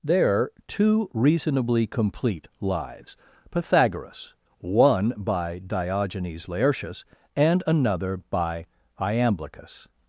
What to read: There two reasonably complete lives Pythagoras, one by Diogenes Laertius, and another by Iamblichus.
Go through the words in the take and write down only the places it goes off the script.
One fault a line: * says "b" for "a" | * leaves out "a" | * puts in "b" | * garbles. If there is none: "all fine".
all fine